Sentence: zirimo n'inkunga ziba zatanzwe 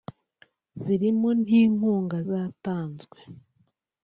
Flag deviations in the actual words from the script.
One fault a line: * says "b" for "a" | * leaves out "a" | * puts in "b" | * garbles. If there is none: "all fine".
* leaves out "ziba"